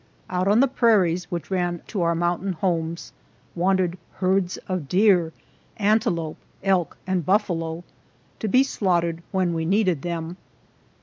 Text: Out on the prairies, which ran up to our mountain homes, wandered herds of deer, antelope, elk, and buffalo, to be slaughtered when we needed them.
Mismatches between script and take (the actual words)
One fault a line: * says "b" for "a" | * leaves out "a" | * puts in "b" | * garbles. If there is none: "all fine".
* leaves out "up"